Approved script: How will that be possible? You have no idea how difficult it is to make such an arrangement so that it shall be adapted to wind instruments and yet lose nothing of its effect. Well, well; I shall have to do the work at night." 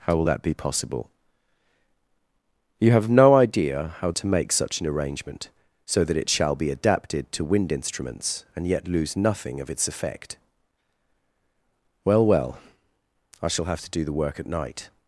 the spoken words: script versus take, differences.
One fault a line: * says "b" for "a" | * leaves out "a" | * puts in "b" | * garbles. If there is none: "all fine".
* leaves out "difficult it is"